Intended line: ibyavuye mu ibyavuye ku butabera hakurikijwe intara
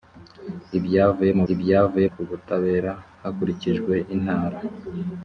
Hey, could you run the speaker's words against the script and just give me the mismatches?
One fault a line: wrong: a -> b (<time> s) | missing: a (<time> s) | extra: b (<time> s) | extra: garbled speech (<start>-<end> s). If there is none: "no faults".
no faults